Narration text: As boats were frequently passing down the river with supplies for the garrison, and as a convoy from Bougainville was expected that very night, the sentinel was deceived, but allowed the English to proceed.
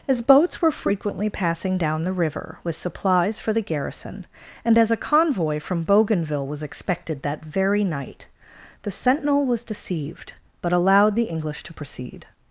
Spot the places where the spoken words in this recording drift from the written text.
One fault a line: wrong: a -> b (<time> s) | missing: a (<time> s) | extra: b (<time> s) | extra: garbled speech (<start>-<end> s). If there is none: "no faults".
no faults